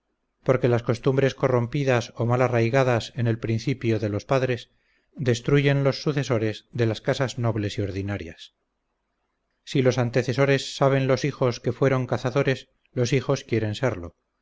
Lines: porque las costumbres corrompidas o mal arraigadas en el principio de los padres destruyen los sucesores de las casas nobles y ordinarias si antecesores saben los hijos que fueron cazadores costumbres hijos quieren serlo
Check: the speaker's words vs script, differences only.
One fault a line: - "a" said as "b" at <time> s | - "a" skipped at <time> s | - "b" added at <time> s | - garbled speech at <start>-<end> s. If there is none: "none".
- "los" added at 9.8 s
- "costumbres" said as "los" at 12.9 s